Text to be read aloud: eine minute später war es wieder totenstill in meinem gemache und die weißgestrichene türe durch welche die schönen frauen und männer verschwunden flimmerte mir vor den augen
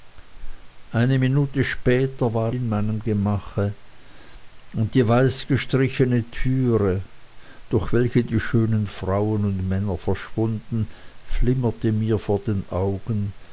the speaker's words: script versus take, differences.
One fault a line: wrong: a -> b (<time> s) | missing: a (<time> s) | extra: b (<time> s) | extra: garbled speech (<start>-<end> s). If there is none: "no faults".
missing: es wieder totenstill (2.5 s)